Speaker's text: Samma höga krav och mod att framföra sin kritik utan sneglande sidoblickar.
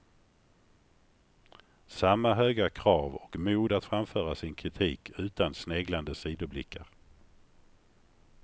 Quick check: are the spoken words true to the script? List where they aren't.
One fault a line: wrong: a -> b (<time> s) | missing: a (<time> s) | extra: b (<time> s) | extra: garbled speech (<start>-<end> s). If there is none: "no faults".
no faults